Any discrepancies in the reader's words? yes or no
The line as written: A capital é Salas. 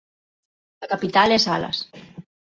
no